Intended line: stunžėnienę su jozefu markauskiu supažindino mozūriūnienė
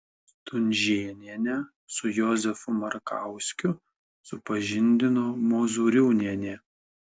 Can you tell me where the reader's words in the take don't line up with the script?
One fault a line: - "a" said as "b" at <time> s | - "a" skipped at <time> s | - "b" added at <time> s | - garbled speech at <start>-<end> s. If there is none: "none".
none